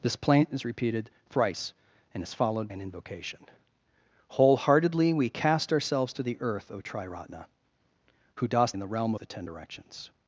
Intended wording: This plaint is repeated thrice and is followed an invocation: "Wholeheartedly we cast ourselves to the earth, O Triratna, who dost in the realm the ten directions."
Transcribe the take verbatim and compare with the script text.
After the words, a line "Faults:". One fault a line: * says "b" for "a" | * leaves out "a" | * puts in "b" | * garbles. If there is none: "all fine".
This plaint is repeated thrice and is followed an invocation: "Wholeheartedly we cast ourselves to the earth, O Triratna, who dost in the realm the ten directions."
Faults:
all fine